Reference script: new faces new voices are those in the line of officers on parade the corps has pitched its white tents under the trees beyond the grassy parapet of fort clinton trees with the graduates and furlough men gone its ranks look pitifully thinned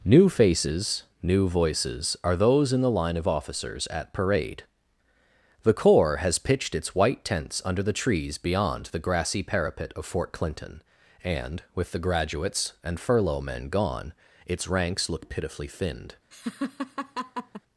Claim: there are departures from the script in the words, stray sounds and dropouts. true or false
true